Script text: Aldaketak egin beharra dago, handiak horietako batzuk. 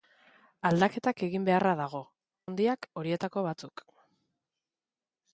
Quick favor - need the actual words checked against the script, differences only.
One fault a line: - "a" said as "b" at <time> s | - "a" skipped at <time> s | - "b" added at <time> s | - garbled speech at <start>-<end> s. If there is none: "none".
none